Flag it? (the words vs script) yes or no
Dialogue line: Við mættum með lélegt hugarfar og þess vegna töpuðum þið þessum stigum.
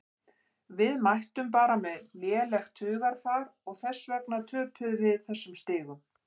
yes